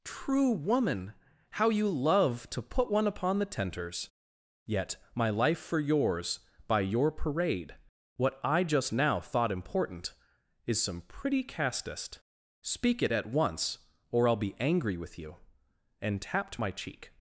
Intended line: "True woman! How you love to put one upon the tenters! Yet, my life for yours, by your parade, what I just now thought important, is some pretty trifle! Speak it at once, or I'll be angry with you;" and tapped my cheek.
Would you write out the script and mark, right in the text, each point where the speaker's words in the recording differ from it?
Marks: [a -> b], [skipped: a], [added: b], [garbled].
"True woman! How you love to put one upon the tenters! Yet, my life for yours, by your parade, what I just now thought important, is some pretty [trifle! -> castest] Speak it at once, or I'll be angry with you;" and tapped my cheek.